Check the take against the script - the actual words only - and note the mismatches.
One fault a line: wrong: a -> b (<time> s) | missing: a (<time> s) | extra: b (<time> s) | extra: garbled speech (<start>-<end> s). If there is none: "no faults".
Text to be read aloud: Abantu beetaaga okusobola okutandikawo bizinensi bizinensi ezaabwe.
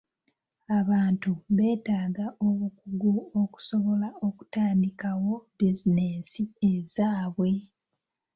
extra: obukugu (2.5 s)
missing: bizinensi (6.4 s)